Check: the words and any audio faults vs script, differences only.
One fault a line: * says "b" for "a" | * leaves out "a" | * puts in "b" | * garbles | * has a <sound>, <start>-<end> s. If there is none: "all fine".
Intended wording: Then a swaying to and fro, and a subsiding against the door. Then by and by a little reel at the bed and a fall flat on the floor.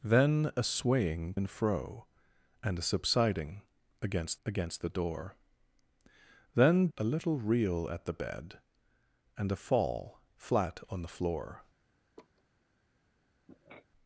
* leaves out "to"
* puts in "against"
* leaves out "by and by"
* has a laugh, 12.2-12.4 s
* has a sniff, 13.5-13.9 s